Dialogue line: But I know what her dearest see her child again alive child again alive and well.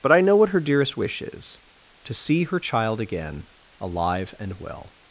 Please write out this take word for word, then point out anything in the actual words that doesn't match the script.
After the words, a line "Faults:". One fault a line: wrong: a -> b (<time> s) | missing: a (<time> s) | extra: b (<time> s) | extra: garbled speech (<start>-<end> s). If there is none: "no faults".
But I know what her dearest wish is to see her child again alive and well.
Faults:
wrong: see her child again alive -> wish is to see her (1.0 s)